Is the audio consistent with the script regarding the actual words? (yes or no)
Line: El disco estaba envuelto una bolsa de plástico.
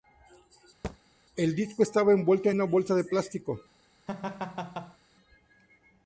yes